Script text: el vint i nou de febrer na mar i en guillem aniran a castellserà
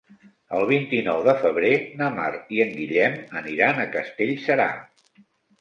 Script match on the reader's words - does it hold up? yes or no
yes